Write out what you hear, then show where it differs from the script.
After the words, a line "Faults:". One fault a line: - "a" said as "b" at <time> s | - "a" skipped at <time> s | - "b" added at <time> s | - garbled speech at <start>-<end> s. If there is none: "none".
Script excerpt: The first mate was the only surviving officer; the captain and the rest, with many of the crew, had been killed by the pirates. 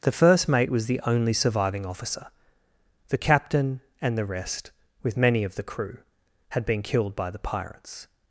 The first mate was the only surviving officer; the captain and the rest, with many of the crew, had been killed by the pirates.
Faults:
none